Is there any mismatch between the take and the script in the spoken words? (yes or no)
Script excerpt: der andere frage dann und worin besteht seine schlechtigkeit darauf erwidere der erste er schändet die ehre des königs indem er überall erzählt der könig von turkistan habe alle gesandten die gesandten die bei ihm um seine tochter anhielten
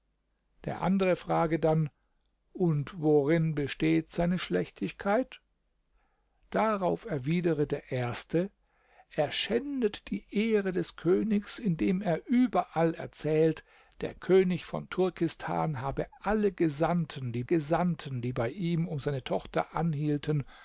no